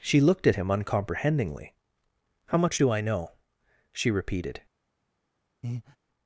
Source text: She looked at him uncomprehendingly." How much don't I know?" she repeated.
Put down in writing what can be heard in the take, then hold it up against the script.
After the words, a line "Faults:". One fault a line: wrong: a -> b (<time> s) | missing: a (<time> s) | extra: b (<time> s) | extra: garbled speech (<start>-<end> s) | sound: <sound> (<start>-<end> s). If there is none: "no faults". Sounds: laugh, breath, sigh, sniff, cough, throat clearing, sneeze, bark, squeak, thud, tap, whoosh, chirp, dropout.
She looked at him uncomprehendingly." How much do I know?" she repeated.
Faults:
wrong: don't -> do (2.8 s)
sound: breath (5.6-6.0 s)